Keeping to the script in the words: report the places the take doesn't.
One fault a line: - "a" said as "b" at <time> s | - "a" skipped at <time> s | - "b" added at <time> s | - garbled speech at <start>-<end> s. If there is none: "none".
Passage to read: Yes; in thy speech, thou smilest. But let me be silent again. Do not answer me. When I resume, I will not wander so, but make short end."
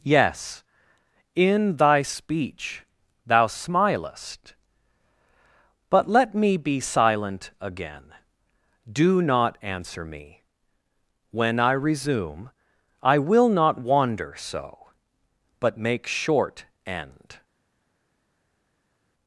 none